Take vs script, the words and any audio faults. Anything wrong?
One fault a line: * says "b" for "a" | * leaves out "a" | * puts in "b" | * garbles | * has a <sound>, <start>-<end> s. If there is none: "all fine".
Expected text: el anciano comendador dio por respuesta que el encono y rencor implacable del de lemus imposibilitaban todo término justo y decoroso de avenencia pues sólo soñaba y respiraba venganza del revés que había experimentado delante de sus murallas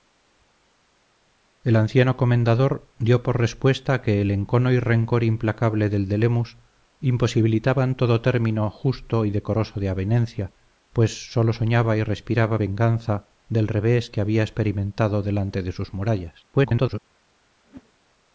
* garbles
* has a whoosh, 17.6-17.9 s